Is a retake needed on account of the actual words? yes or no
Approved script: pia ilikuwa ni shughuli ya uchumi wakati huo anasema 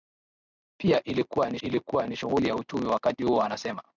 yes